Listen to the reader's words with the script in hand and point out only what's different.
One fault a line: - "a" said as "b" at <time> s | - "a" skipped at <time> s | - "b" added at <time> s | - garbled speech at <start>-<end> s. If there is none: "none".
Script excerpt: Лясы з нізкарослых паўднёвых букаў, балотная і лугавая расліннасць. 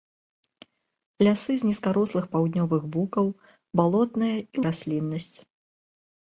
- "лугавая" skipped at 4.6 s